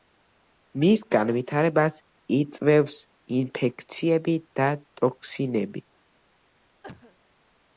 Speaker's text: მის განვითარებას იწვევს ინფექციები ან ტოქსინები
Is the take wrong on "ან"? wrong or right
wrong